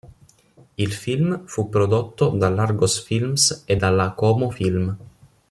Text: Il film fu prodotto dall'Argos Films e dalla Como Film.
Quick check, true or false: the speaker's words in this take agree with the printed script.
true